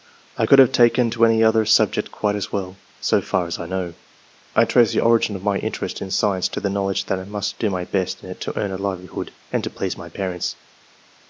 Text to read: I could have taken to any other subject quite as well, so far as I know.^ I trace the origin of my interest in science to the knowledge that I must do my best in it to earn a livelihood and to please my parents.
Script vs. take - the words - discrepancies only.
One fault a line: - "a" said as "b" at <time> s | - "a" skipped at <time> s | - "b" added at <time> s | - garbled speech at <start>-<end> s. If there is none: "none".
none